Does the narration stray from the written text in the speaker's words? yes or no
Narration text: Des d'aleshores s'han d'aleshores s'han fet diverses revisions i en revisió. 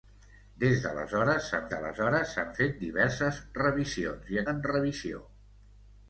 no